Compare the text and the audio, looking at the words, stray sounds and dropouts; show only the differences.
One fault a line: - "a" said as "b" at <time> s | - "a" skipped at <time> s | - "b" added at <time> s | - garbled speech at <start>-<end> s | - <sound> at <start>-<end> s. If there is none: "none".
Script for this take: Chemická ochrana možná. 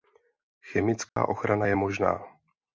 - dropout at 1.1-1.2 s
- "je" added at 1.6 s